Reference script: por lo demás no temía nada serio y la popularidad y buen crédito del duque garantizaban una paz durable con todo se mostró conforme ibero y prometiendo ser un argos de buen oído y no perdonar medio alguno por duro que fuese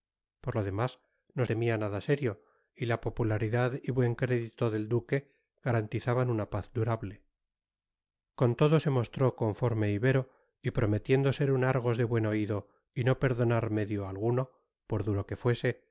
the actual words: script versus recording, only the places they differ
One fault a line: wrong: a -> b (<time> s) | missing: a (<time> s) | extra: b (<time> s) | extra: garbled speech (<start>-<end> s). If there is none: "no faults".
no faults